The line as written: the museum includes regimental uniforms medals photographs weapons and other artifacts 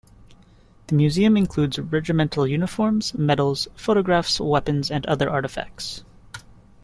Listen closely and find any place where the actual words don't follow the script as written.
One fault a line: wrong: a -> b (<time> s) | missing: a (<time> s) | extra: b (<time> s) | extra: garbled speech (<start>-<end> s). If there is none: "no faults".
no faults